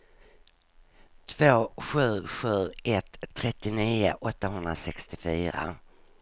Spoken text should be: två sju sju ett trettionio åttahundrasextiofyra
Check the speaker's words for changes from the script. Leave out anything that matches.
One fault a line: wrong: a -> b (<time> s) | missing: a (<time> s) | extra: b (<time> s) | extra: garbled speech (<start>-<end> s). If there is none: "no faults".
no faults